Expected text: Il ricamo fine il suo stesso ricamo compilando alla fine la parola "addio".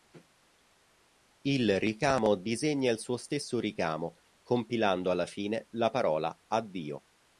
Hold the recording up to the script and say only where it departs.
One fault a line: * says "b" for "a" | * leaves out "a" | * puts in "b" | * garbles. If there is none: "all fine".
* says "disegna" for "fine"